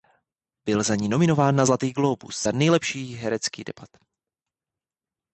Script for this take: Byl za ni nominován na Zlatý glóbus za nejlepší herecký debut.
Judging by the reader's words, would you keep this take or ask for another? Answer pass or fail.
pass